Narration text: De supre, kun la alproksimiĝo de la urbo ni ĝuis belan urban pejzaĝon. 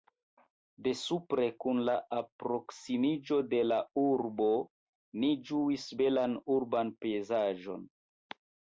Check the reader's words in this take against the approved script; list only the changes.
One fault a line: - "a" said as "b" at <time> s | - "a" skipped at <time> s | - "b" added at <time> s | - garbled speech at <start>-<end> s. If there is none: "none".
none